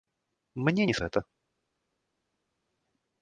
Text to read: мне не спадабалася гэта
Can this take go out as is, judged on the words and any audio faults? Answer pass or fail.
fail